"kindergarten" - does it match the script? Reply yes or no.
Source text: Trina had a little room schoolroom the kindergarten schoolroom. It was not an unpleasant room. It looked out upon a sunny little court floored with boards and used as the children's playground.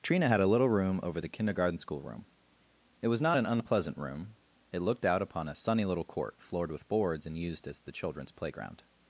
yes